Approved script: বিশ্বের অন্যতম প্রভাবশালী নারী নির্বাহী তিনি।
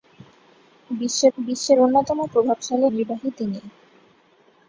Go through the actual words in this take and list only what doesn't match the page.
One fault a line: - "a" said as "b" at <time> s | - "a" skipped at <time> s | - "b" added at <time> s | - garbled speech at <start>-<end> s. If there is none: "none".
- "বিশ্বের" added at 1.4 s
- "নারী" skipped at 2.9 s